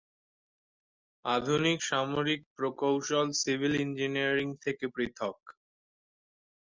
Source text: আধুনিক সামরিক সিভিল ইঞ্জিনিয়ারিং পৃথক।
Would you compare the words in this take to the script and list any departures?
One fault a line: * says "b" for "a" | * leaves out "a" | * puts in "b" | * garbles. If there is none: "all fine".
* puts in "প্রকৌশল"
* puts in "থেকে"